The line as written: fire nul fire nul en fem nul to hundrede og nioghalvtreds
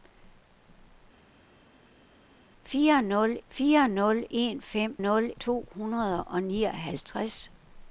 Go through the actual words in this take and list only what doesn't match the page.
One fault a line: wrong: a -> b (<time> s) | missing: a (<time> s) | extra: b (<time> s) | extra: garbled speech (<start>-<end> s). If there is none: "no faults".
no faults